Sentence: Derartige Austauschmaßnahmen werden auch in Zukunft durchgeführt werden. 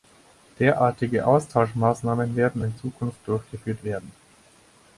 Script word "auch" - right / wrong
wrong